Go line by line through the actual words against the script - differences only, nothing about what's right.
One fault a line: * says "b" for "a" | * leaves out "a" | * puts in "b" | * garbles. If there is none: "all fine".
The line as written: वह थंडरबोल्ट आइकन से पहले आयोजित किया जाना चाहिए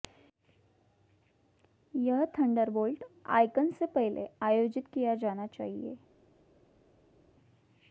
* says "यह" for "वह"